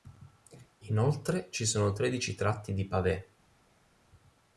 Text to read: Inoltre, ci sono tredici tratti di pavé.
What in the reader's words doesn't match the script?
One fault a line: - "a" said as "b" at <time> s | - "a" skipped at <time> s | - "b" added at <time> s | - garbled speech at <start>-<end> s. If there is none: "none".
none